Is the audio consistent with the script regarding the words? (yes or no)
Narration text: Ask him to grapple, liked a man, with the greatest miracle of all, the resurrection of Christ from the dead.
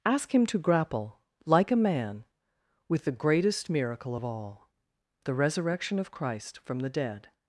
no